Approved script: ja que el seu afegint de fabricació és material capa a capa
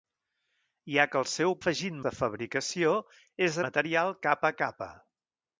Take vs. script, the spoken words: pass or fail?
pass